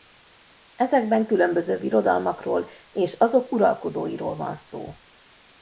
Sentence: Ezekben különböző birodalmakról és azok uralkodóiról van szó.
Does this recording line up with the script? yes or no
yes